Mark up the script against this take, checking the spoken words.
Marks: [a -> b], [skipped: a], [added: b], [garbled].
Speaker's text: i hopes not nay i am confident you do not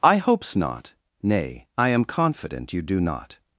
i hopes not nay i am confident you do not